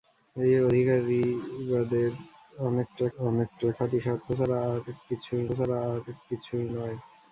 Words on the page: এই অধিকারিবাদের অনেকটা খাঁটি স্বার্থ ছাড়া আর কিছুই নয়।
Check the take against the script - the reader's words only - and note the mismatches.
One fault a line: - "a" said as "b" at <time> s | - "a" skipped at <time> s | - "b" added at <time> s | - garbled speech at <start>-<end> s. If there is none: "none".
- "অনেকটা" added at 3.2 s
- "ছাড়া আর কিছুই" added at 5.6 s